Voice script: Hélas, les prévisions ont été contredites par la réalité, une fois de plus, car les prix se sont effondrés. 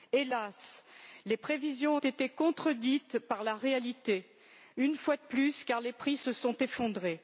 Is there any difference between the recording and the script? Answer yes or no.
no